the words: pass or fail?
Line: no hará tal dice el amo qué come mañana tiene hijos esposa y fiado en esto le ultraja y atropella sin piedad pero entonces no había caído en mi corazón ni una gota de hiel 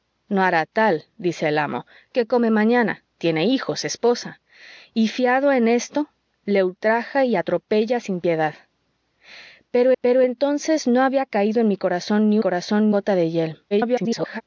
fail